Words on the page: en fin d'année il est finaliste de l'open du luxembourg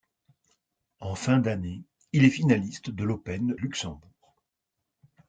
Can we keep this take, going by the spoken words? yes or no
no